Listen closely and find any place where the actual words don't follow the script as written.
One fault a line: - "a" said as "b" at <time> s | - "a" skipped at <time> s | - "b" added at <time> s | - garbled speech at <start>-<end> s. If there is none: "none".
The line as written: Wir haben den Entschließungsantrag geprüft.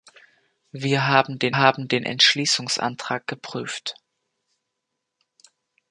- "haben den" added at 1.5 s